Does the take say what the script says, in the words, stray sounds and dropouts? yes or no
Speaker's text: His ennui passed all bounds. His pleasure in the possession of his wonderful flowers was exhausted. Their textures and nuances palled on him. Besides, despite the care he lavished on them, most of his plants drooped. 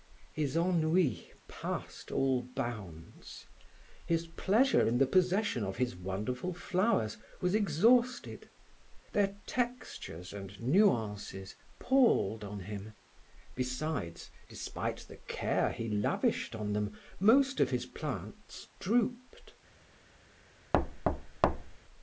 no